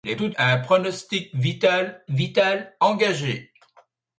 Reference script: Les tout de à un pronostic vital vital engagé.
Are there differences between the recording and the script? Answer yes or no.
no